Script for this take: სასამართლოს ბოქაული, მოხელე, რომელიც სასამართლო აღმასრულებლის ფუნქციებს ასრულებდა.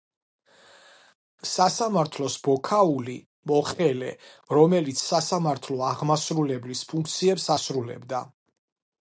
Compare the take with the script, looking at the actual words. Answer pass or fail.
pass